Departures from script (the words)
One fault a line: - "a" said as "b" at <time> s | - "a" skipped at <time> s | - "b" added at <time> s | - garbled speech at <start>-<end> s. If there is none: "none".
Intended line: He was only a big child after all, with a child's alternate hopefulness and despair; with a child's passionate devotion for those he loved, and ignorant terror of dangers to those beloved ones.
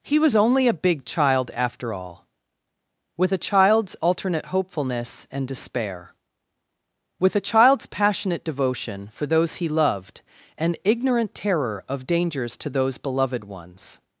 none